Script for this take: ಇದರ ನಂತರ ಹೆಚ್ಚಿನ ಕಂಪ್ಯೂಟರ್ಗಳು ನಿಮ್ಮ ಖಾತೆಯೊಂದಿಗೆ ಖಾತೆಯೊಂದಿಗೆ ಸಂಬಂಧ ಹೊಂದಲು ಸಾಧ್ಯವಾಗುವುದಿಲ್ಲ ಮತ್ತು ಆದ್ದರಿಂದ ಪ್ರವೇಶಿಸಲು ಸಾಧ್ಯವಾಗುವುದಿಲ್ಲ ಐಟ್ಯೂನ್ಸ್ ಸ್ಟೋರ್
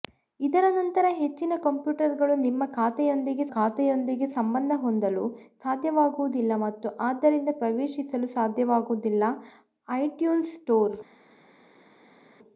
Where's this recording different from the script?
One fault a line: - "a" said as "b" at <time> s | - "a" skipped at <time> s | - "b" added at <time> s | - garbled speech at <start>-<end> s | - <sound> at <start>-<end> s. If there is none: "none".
none